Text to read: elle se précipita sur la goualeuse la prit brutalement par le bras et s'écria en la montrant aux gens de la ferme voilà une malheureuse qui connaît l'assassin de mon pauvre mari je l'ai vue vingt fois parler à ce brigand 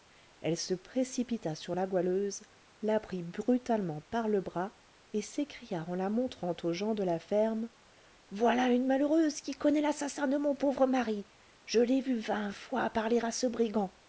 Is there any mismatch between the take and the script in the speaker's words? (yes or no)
no